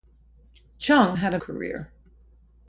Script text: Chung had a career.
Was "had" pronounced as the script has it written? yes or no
yes